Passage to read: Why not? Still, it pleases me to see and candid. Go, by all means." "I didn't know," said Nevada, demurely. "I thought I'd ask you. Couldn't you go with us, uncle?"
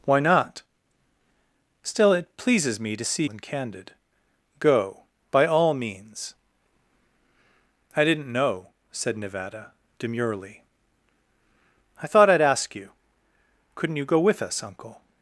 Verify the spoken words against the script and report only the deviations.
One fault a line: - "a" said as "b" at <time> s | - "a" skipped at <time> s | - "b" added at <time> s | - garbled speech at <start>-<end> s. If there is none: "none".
none